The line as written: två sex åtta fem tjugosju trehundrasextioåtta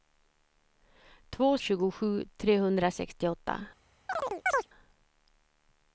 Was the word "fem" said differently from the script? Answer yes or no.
yes